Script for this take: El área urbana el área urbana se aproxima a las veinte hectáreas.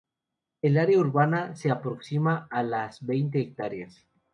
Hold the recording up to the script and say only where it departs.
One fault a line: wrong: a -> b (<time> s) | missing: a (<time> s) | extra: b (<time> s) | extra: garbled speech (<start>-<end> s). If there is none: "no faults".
missing: el área urbana (1.6 s)